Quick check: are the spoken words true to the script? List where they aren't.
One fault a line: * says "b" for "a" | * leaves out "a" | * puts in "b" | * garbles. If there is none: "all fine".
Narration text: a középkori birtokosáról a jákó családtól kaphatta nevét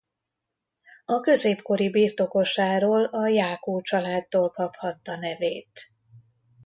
all fine